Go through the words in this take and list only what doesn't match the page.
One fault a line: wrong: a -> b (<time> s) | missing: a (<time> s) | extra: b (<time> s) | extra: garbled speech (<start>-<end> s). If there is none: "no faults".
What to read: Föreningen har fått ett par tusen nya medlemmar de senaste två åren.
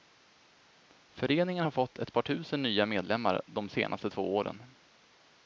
no faults